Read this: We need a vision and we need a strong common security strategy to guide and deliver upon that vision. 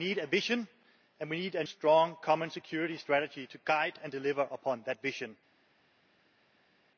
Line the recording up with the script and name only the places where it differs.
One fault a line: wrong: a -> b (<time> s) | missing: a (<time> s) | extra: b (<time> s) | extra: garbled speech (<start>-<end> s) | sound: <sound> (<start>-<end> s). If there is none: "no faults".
no faults